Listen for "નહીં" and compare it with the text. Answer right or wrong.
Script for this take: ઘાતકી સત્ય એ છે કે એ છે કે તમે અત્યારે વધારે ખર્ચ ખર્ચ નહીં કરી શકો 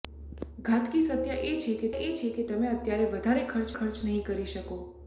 right